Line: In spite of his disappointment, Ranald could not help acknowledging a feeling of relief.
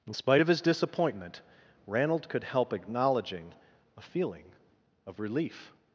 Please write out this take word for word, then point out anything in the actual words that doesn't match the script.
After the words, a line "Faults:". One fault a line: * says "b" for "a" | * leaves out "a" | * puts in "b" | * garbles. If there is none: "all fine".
In spite of his disappointment, Ranald could help acknowledging a feeling of relief.
Faults:
* leaves out "not"